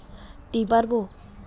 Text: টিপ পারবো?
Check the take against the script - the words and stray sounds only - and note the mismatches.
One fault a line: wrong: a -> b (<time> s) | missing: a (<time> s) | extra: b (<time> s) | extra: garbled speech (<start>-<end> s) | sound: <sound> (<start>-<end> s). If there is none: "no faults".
no faults